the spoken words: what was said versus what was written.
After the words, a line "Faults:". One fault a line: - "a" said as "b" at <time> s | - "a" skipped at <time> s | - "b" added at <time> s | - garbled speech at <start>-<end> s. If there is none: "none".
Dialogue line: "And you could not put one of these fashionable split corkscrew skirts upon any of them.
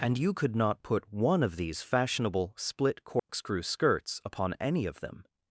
"And you could not put one of these fashionable split corkscrew skirts upon any of them.
Faults:
none